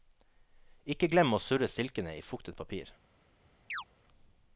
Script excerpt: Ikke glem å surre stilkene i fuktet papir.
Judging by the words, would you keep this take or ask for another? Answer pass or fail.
pass